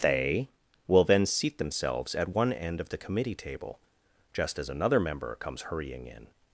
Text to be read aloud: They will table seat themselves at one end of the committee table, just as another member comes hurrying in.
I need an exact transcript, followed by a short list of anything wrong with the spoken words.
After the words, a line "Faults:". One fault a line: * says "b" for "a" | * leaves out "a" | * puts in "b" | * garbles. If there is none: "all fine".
They will then seat themselves at one end of the committee table, just as another member comes hurrying in.
Faults:
* says "then" for "table"